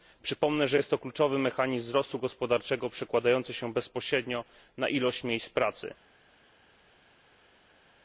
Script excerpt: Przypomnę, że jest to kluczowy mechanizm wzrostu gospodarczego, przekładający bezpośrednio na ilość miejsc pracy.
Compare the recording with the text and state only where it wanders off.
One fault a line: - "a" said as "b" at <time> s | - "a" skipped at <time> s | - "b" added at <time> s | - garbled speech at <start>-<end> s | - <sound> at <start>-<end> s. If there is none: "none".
- "się" added at 3.5 s